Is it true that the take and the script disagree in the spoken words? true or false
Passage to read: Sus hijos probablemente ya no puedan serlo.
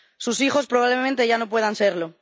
false